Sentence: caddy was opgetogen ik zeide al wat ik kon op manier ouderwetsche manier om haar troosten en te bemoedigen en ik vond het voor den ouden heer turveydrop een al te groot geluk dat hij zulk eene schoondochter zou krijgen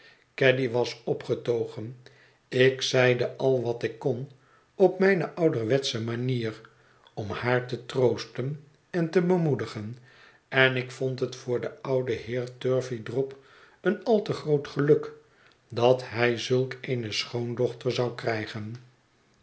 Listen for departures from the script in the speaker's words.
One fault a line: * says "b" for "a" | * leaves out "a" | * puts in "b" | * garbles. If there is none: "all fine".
* says "mijne" for "manier"
* puts in "te"